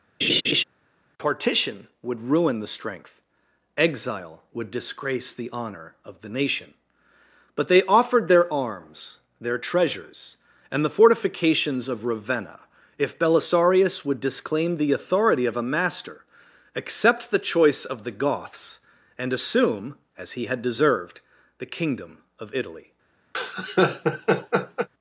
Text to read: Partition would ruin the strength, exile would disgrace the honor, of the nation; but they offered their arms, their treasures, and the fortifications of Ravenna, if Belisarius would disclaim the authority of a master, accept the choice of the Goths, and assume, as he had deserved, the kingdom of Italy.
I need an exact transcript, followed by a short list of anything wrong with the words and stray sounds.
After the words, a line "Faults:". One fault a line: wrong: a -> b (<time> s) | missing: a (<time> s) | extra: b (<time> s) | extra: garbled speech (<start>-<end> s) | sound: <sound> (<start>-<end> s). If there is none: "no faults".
Partition would ruin the strength, exile would disgrace the honor, of the nation; but they offered their arms, their treasures, and the fortifications of Ravenna, if Belisarius would disclaim the authority of a master, accept the choice of the Goths, and assume, as he had deserved, the kingdom of Italy.
Faults:
sound: laugh (0.2-0.6 s)
sound: laugh (23.3-24.9 s)